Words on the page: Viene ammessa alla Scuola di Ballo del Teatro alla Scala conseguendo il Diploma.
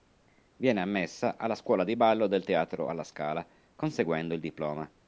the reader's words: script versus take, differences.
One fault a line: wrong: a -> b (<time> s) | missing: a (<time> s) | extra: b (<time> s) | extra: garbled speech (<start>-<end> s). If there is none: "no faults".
no faults